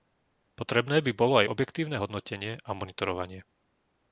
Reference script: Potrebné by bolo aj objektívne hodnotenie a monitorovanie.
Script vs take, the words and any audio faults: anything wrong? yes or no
no